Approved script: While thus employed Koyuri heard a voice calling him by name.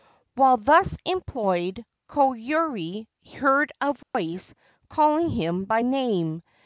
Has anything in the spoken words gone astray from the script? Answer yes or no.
no